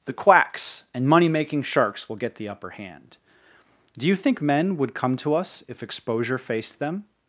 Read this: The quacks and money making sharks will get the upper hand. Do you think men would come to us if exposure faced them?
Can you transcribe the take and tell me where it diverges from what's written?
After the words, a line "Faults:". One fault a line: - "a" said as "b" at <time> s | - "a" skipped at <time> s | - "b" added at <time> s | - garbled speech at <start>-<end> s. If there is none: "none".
The quacks and money making sharks will get the upper hand. Do you think men would come to us if exposure faced them?
Faults:
none